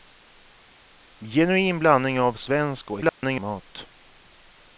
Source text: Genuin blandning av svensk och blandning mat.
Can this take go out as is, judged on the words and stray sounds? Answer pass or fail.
fail